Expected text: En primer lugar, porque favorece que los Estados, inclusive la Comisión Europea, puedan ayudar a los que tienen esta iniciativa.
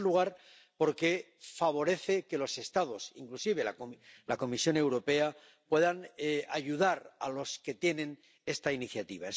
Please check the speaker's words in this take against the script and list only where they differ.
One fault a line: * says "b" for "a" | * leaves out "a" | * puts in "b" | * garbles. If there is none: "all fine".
all fine